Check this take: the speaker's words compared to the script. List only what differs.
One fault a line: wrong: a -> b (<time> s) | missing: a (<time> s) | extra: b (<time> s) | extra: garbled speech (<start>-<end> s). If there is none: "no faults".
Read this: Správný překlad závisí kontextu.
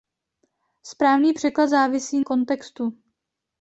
no faults